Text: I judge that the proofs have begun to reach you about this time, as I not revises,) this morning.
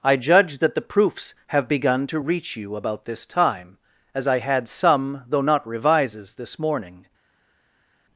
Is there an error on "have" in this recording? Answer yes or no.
no